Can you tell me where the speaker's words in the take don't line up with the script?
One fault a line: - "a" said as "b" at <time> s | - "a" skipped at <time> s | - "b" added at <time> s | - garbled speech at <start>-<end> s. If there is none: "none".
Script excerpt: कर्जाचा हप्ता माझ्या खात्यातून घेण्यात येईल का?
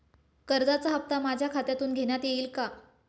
none